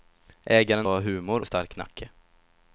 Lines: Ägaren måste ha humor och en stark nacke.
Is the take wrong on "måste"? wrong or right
wrong